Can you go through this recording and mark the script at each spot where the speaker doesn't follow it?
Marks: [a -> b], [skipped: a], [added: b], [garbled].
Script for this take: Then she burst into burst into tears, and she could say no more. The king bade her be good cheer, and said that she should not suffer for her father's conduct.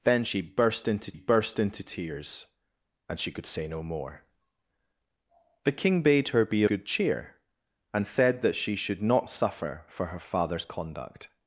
Then she burst into burst into tears, and she could say no more. The king bade her be good cheer, and said that she should not suffer for her father's conduct.